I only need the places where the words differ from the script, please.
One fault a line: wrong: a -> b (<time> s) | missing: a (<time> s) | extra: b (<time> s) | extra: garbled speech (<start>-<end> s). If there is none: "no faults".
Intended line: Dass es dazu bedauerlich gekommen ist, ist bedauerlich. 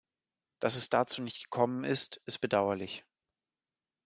wrong: bedauerlich -> nicht (1.2 s)